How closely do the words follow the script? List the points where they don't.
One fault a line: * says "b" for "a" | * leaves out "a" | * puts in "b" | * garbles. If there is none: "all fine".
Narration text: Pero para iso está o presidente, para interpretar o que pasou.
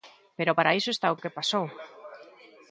* leaves out "presidente para interpretar"